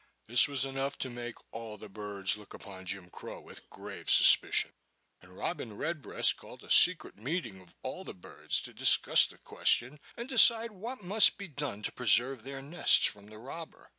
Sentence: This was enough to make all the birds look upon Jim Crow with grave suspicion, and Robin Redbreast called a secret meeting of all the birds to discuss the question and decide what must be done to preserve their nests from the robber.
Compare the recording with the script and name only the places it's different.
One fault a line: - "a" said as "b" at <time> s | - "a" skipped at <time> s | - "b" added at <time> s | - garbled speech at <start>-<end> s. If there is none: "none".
none